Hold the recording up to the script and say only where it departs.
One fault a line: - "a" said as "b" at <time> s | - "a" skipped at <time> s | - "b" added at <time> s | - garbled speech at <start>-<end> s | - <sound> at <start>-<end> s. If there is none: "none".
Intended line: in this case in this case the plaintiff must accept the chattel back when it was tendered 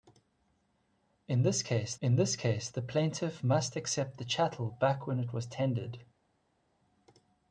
none